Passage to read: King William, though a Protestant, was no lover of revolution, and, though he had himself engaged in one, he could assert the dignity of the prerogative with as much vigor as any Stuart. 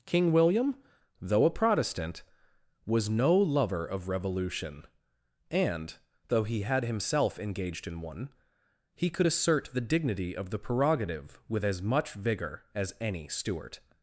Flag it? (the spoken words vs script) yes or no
no